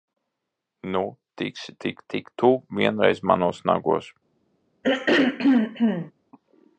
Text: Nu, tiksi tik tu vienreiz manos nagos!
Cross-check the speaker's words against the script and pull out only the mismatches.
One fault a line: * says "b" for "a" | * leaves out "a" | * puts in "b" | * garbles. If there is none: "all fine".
* puts in "tik"